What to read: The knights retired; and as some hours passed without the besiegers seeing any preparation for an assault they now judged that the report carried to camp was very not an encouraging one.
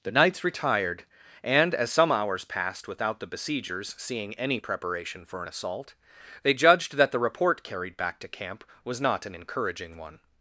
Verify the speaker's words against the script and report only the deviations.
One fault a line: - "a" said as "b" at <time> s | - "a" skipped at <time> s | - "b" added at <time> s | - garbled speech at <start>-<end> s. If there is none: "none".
- "now" skipped at 6.5 s
- "back" added at 8.0 s
- "very" skipped at 9.0 s